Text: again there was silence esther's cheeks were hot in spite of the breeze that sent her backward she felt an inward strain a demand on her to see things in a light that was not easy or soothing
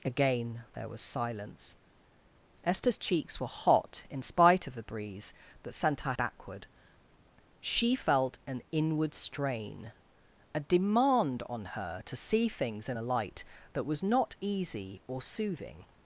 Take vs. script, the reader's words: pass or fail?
pass